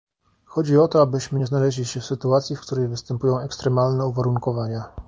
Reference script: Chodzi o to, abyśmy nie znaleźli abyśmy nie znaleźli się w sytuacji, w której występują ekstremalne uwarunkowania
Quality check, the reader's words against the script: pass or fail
fail